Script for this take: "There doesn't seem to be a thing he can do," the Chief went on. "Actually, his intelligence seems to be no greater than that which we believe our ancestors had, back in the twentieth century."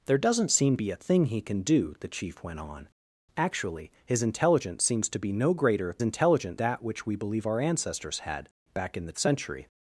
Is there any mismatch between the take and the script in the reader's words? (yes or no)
yes